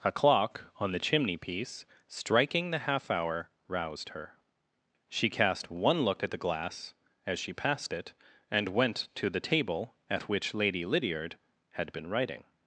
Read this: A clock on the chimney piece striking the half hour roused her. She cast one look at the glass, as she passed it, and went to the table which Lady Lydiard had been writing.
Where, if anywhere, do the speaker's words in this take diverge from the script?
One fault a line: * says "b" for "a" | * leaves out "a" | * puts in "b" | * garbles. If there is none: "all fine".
* puts in "at"